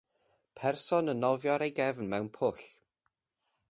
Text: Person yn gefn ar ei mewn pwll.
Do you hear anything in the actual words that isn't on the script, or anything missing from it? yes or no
yes